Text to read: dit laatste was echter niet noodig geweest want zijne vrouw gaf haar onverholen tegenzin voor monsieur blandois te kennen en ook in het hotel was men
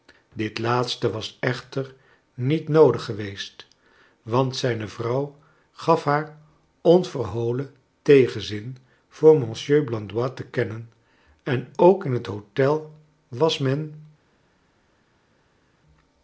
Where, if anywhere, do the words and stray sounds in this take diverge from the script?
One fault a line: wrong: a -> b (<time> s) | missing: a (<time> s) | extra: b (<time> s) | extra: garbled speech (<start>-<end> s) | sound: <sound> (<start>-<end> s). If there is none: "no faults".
no faults